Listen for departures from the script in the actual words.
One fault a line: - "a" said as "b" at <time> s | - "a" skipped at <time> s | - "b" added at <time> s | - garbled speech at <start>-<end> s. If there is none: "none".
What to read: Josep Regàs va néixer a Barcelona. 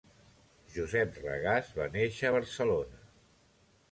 none